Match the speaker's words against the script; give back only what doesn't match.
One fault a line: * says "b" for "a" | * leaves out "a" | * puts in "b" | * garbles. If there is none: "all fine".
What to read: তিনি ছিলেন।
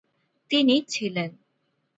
all fine